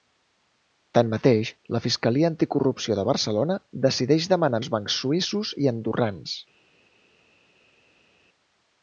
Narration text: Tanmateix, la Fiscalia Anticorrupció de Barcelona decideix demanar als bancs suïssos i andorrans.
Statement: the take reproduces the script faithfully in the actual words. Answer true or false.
true